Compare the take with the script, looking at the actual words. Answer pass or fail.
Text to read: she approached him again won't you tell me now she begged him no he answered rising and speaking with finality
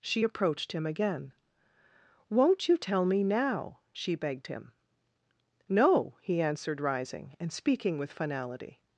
pass